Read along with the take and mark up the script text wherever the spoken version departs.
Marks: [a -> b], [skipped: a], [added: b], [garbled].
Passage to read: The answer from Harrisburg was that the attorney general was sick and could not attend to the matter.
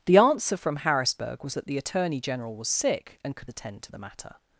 The answer from Harrisburg was that the attorney general was sick and could [skipped: not] attend to the matter.